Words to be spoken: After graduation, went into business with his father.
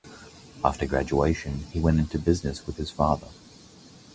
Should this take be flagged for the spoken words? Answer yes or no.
yes